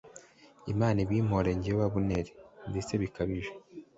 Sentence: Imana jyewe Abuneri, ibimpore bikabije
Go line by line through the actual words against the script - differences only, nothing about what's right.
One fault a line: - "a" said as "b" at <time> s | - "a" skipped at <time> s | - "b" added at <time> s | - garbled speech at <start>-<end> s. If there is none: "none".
- "ibimpore" added at 1.1 s
- "ibimpore" said as "ndetse" at 2.7 s